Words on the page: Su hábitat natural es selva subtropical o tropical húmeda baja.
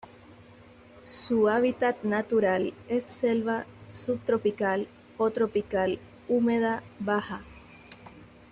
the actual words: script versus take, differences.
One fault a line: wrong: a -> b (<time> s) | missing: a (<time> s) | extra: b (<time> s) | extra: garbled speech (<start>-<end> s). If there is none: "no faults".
no faults